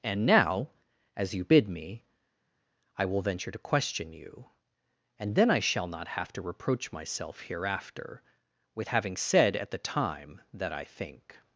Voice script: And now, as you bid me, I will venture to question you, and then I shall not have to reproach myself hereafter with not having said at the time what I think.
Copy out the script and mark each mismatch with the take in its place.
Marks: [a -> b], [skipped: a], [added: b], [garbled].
And now, as you bid me, I will venture to question you, and then I shall not have to reproach myself hereafter with [skipped: not] having said at the time [what -> that] I think.